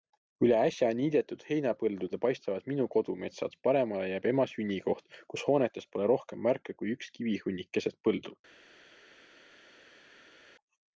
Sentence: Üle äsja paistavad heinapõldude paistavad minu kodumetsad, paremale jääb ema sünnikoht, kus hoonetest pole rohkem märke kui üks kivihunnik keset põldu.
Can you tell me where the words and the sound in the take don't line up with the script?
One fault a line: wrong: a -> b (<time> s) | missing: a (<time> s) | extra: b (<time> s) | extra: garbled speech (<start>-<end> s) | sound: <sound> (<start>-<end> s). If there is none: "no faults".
wrong: paistavad -> niidetud (1.0 s)